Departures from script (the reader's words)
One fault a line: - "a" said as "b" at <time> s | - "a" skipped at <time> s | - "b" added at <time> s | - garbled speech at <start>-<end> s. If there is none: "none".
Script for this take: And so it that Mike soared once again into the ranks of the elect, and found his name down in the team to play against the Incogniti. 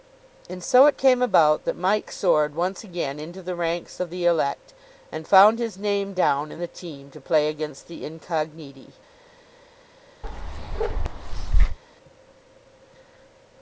- "came about" added at 1.0 s